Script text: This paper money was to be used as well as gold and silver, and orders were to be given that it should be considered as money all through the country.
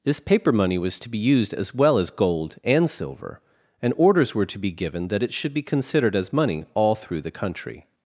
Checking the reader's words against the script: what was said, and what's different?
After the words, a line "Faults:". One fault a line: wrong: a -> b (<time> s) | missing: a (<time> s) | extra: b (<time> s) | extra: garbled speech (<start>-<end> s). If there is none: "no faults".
This paper money was to be used as well as gold and silver, and orders were to be given that it should be considered as money all through the country.
Faults:
no faults